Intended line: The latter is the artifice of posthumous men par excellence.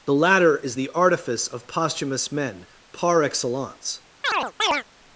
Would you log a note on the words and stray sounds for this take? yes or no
yes